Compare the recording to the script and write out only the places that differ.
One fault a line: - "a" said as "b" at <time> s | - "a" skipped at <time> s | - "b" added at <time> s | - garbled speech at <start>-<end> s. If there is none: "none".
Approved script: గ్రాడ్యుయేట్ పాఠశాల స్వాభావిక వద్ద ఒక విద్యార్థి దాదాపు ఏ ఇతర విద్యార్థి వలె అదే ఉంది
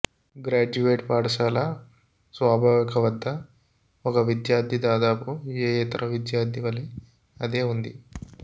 none